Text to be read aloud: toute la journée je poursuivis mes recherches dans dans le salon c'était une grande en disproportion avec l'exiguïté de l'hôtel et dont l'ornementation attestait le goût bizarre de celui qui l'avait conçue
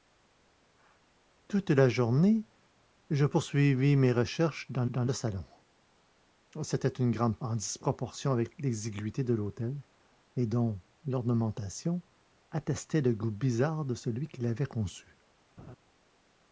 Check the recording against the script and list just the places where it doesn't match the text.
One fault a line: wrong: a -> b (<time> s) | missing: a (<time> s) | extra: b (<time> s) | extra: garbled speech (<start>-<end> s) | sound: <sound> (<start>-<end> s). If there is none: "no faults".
sound: laugh (15.6-15.8 s)